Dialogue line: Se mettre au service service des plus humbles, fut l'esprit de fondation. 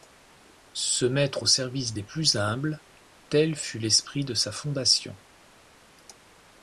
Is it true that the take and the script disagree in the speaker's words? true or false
true